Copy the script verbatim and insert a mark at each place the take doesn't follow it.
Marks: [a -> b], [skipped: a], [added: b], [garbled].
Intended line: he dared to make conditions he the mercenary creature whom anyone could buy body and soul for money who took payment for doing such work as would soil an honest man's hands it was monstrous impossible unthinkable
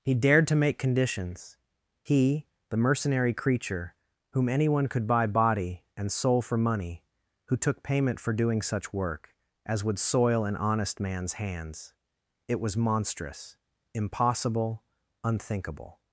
he dared to make conditions he the mercenary creature whom anyone could buy body and soul for money who took payment for doing such work as would soil an honest man's hands it was monstrous impossible unthinkable